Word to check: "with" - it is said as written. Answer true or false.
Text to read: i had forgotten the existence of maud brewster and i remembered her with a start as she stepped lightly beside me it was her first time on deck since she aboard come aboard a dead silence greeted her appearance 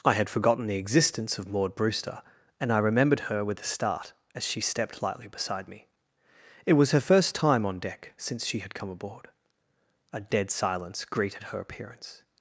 true